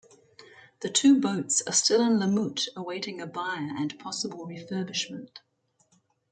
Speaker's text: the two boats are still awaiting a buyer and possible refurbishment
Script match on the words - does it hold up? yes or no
no